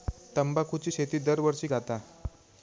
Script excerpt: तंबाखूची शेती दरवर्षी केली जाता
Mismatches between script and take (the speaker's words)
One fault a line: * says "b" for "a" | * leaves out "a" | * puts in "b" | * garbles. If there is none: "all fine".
* leaves out "केली"